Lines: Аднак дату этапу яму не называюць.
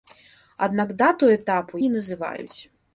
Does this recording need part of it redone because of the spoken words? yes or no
yes